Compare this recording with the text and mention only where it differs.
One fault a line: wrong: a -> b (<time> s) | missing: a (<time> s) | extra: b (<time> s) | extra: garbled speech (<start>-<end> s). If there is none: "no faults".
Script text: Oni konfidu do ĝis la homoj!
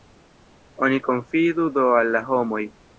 wrong: ĝis -> al (2.0 s)